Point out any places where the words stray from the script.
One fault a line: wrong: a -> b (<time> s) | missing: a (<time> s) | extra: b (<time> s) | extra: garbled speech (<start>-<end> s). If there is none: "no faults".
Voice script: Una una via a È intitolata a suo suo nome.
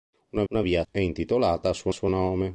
no faults